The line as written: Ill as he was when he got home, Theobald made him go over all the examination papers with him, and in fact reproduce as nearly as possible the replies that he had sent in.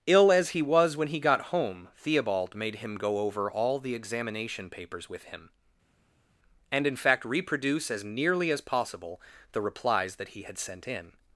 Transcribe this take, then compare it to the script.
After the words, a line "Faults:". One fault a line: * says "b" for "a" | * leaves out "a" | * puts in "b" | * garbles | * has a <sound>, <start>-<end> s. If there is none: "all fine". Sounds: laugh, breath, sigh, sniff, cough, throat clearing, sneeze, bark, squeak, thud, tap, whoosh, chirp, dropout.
Ill as he was when he got home, Theobald made him go over all the examination papers with him, and in fact reproduce as nearly as possible the replies that he had sent in.
Faults:
all fine